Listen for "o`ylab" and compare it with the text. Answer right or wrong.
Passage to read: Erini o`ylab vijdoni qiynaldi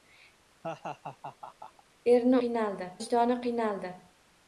wrong